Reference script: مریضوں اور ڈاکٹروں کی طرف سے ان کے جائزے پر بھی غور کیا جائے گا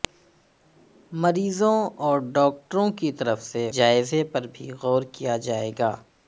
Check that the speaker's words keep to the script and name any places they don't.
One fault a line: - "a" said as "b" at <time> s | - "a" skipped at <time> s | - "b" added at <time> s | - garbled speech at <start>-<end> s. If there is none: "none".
- "ان کے" skipped at 3.7 s